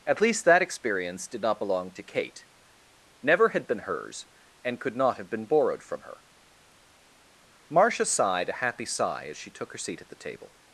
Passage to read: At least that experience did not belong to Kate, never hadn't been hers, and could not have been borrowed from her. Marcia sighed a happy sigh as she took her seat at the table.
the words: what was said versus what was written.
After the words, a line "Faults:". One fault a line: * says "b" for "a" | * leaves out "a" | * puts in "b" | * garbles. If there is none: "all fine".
At least that experience did not belong to Kate, never had been hers, and could not have been borrowed from her. Marcia sighed a happy sigh as she took her seat at the table.
Faults:
* says "had" for "hadn't"